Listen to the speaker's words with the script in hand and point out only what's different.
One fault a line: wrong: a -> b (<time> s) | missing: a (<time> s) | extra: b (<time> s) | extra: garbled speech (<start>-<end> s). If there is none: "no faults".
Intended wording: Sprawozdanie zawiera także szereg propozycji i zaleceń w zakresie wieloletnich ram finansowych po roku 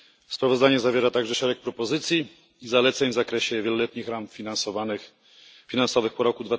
no faults